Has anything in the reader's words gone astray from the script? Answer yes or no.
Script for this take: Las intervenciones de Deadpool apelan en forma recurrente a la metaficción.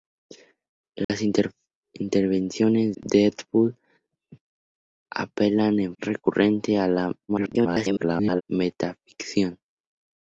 yes